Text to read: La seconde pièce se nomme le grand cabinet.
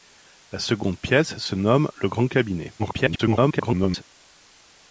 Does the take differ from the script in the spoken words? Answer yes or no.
yes